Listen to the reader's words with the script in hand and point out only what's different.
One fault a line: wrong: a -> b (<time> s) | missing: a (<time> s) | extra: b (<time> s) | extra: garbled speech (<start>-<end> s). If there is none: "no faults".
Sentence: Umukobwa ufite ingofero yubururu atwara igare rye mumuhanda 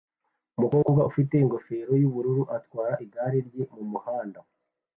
no faults